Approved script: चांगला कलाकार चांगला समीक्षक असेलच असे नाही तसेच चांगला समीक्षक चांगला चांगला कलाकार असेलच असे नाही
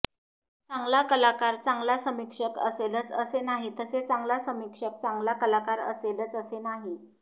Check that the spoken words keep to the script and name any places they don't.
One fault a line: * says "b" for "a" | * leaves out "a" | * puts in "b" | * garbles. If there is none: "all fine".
* leaves out "चांगला"